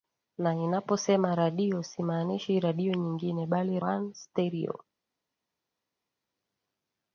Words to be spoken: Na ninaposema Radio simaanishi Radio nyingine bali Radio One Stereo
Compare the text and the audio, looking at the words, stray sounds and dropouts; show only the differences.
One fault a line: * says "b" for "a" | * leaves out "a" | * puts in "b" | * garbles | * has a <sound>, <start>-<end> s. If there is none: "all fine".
* leaves out "Radio"